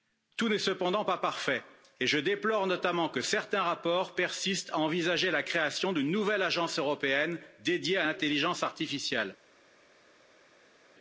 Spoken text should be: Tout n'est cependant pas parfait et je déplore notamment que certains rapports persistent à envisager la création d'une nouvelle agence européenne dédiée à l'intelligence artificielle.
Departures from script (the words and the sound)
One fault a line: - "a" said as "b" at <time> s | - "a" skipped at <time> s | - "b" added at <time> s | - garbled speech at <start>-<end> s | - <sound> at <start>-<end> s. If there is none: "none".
none